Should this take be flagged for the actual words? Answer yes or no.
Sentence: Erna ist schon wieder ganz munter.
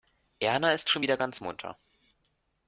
no